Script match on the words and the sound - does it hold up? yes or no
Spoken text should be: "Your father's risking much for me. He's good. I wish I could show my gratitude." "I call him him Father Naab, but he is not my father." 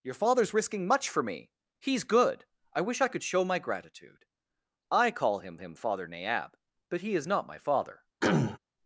no